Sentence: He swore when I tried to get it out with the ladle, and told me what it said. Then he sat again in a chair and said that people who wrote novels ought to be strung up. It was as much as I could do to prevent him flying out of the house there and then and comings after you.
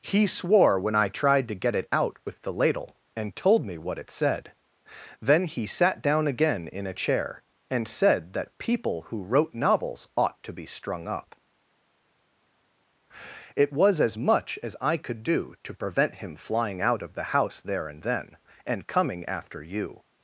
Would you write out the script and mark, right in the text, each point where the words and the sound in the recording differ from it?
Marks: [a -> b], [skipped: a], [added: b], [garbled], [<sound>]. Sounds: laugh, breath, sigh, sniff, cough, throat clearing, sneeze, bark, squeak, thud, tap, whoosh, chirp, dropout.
He swore when I tried to get it out with the ladle, and told me what it said. Then he sat [added: down] again in a chair and said that people who wrote novels ought to be strung up. It was as much as I could do to prevent him flying out of the house there and then and [comings -> coming] after you.